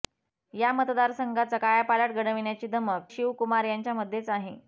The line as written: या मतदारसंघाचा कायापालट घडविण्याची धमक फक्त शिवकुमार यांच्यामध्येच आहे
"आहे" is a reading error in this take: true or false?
false